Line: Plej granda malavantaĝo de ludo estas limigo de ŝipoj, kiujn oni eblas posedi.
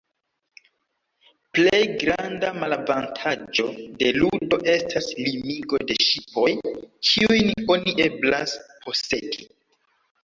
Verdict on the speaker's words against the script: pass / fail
pass